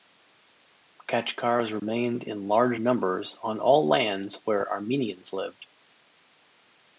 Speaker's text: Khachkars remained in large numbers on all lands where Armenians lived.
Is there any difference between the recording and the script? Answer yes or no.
no